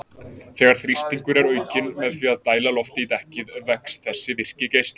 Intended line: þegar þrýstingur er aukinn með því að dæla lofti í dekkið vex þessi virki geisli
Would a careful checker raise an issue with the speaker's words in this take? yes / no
no